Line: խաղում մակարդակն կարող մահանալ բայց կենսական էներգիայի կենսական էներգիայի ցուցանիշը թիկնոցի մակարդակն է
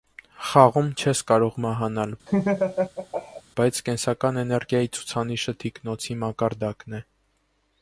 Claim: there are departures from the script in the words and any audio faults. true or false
true